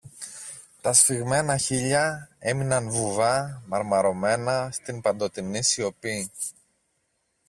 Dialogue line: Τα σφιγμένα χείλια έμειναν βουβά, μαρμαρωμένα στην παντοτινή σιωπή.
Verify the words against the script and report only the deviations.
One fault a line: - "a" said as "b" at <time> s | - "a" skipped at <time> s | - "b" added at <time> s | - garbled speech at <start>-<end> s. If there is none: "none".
none